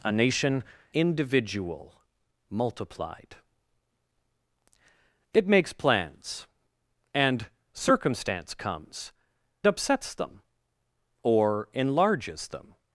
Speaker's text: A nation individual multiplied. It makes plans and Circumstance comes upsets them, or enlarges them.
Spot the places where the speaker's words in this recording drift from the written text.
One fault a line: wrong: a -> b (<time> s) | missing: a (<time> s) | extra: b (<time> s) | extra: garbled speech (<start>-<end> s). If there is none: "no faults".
no faults